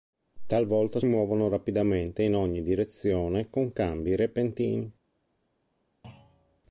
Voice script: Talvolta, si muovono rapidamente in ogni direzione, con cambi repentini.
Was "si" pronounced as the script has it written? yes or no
no